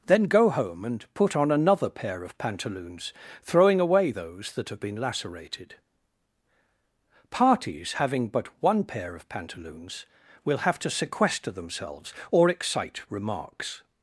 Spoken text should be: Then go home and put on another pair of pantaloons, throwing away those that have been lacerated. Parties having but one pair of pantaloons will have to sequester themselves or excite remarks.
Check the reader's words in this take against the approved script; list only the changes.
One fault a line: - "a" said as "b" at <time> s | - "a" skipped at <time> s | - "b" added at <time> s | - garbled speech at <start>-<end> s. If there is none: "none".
none